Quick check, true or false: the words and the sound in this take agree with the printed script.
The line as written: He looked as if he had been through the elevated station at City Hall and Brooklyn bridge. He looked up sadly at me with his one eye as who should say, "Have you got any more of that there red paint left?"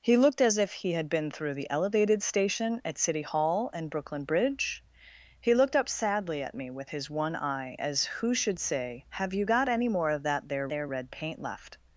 false